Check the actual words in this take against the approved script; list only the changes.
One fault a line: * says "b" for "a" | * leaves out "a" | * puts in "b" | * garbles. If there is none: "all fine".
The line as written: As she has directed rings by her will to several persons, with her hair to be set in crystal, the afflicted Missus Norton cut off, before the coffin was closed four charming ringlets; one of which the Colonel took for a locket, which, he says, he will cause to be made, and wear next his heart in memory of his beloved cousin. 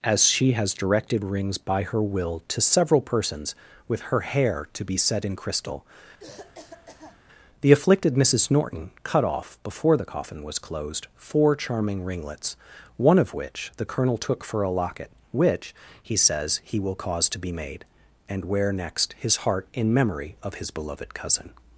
all fine